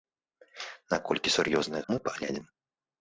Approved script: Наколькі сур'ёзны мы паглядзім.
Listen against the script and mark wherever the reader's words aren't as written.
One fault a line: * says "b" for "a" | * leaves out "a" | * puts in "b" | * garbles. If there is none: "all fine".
all fine